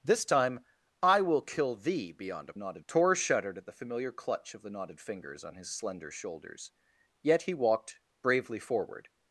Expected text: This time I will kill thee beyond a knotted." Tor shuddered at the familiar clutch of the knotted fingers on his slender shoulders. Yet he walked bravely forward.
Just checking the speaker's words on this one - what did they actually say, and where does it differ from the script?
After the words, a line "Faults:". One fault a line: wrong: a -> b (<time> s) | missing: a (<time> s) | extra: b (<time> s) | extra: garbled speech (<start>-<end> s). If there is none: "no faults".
This time I will kill thee beyond a knotted." Tor shuddered at the familiar clutch of the knotted fingers on his slender shoulders. Yet he walked bravely forward.
Faults:
no faults